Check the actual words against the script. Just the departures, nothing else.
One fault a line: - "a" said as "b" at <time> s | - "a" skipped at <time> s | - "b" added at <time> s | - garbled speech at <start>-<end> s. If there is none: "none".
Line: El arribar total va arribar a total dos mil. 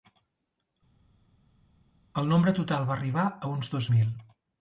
- "arribar" said as "nombre" at 2.3 s
- "total" said as "uns" at 3.5 s